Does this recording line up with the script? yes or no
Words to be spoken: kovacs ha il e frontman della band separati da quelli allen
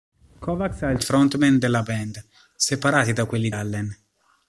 yes